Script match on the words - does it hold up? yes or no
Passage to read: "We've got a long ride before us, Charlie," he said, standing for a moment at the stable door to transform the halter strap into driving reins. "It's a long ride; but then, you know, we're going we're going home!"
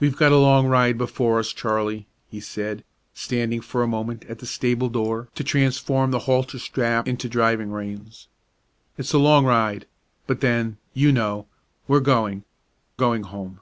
no